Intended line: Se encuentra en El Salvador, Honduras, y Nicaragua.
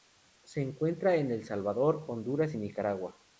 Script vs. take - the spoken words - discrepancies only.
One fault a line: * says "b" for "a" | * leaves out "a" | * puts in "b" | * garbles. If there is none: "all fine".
all fine